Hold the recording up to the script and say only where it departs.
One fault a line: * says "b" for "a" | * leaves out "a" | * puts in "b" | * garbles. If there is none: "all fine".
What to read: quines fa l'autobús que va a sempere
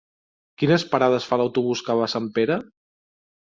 * puts in "parades"